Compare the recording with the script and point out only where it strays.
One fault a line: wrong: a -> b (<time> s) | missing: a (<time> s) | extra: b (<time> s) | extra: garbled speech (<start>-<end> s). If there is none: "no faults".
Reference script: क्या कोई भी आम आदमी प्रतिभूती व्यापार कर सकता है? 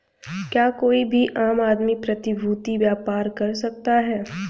no faults